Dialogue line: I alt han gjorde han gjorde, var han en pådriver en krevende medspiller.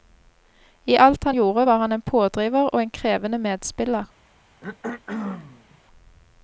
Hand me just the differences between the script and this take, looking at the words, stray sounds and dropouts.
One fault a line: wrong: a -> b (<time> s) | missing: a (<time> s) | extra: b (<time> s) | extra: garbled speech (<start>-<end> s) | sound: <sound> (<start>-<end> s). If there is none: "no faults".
missing: han gjorde (1.7 s)
extra: og (2.7 s)
sound: throat clearing (4.6-5.8 s)